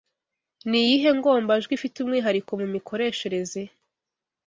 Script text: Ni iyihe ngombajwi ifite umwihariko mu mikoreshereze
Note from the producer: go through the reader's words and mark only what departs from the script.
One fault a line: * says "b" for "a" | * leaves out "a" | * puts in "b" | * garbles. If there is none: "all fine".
all fine